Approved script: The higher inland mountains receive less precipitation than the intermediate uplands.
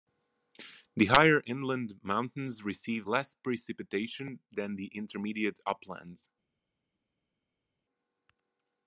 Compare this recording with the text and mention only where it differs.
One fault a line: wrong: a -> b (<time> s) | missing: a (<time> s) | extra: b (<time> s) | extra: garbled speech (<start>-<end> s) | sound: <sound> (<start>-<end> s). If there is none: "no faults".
no faults